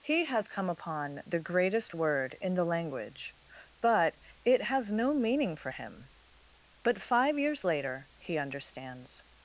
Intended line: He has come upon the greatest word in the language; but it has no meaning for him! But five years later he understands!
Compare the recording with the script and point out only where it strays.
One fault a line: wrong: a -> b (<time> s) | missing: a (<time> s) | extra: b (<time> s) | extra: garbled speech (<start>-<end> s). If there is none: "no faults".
no faults